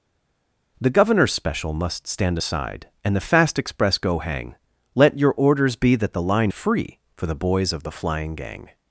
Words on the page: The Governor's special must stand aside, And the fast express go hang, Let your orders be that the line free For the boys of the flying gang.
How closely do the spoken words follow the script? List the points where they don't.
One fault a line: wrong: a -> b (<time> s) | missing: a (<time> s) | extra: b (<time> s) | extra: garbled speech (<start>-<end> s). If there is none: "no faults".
no faults